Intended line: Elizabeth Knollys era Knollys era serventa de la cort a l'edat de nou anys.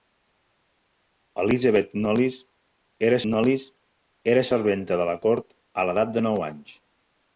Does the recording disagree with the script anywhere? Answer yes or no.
no